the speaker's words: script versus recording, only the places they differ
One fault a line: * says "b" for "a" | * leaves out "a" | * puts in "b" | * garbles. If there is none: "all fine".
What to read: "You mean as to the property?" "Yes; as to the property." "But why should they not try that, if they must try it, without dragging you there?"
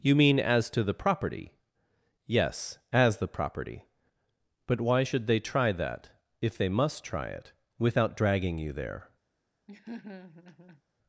* leaves out "to"
* leaves out "not"